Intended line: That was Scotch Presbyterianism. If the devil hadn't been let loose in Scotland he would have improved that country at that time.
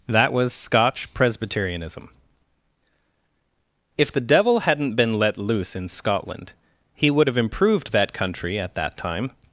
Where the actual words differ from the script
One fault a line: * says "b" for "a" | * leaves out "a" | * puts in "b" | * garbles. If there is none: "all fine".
all fine